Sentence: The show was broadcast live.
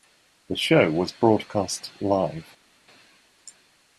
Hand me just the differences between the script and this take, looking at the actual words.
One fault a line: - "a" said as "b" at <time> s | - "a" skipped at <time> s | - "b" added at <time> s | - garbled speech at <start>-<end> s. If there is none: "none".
none